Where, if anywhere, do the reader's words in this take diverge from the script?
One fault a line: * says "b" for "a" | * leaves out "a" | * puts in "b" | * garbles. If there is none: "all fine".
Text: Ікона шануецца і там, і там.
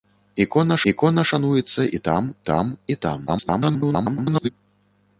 * puts in "ікона"
* puts in "там"
* garbles